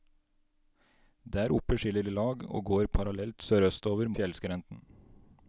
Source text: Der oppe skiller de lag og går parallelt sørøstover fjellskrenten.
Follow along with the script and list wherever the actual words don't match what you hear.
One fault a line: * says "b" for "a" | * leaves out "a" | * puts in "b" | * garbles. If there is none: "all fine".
all fine